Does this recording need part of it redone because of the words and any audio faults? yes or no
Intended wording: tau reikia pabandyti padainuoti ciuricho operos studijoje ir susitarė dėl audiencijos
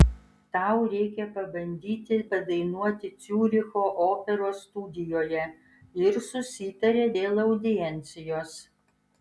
no